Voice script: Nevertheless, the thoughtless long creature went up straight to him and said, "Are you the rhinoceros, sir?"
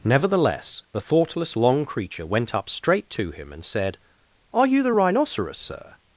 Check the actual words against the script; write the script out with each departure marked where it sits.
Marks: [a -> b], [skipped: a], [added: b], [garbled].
Nevertheless, the thoughtless long creature went up straight to him and said, "Are you the rhinoceros, sir?"